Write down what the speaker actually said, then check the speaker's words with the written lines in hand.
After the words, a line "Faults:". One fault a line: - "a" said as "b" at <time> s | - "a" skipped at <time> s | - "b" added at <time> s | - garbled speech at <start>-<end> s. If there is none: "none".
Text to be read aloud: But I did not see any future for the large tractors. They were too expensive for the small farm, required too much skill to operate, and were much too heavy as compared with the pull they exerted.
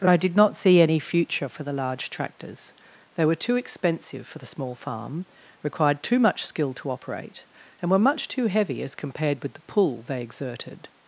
But I did not see any future for the large tractors. They were too expensive for the small farm, required too much skill to operate, and were much too heavy as compared with the pull they exerted.
Faults:
none